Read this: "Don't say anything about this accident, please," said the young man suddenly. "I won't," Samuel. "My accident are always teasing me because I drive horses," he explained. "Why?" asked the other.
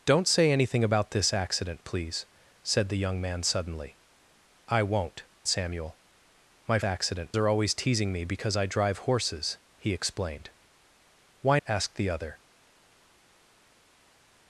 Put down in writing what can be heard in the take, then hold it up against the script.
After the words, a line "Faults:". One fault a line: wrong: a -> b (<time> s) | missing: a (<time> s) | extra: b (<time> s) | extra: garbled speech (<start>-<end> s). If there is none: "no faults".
"Don't say anything about this accident, please," said the young man suddenly. "I won't," Samuel. "My accident are always teasing me because I drive horses," he explained. "Why?" asked the other.
Faults:
no faults